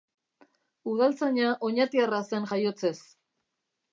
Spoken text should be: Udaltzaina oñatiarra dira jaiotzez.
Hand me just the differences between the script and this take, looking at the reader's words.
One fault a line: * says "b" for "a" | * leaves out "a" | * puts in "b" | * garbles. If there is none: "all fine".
* says "zen" for "dira"